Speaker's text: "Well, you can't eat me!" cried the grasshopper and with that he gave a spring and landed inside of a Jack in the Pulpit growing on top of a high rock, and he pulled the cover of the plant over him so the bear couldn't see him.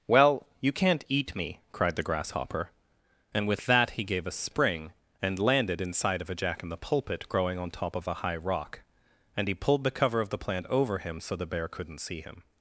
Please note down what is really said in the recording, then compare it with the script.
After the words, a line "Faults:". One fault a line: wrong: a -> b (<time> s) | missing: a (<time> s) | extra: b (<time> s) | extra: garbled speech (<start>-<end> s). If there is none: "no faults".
"Well, you can't eat me!" cried the grasshopper and with that he gave a spring and landed inside of a Jack in the Pulpit growing on top of a high rock, and he pulled the cover of the plant over him so the bear couldn't see him.
Faults:
no faults